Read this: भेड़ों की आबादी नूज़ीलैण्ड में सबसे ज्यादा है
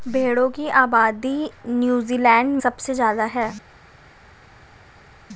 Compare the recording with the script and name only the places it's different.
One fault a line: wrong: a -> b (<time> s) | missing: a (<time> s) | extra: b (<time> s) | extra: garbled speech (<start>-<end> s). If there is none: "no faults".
missing: में (2.5 s)